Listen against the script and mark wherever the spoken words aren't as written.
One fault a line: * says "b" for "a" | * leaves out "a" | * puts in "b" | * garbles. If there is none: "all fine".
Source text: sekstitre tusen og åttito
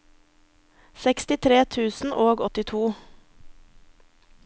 all fine